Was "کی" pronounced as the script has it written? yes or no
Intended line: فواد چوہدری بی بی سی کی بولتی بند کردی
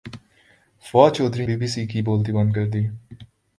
yes